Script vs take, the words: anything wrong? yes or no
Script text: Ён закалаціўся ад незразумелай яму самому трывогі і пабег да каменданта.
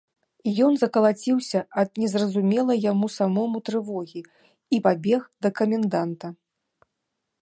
no